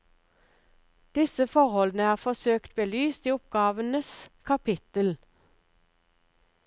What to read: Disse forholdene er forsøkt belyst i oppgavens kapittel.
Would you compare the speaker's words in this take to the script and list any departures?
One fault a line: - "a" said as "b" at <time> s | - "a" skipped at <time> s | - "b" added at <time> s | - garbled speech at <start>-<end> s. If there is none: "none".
none